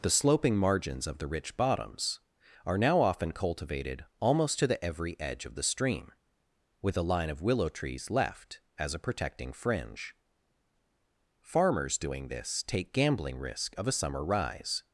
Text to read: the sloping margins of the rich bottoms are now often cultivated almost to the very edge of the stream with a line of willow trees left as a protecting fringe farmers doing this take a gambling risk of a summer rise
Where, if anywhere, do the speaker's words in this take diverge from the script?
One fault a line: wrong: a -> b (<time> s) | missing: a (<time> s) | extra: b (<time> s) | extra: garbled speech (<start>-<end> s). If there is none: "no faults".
wrong: very -> every (4.8 s)
missing: a (12.9 s)